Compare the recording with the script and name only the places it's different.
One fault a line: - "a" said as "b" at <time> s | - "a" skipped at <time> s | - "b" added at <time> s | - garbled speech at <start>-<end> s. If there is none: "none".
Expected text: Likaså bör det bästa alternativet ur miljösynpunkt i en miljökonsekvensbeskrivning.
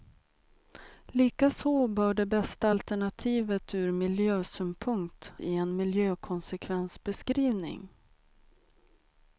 none